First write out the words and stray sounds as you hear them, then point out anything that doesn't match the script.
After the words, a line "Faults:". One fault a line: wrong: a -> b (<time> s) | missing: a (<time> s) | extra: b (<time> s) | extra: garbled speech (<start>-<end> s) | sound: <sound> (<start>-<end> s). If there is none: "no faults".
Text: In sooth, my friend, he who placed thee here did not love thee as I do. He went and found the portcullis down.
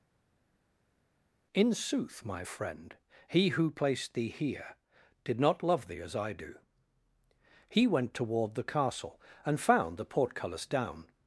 In sooth, my friend, he who placed thee here did not love thee as I do. He went toward the castle, and found the portcullis down.
Faults:
extra: toward the castle (8.1 s)